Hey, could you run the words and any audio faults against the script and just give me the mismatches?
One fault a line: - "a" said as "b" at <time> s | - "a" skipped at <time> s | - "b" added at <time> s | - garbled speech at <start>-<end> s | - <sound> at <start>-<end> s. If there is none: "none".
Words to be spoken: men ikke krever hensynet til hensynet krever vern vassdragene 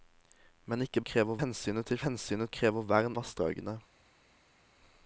none